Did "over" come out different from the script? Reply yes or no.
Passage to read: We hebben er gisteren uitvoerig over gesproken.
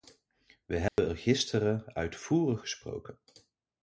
yes